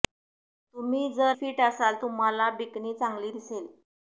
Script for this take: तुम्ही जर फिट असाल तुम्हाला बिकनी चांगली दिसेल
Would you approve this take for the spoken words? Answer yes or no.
yes